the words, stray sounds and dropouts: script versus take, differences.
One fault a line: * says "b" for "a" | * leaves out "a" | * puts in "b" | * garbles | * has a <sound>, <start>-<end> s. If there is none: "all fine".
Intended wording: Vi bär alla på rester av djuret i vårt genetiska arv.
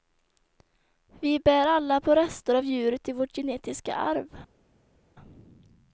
all fine